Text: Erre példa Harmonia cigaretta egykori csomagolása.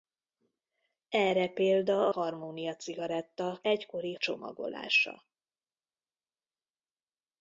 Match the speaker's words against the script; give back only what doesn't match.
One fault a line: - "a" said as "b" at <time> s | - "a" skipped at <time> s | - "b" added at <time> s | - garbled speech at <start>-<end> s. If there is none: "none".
none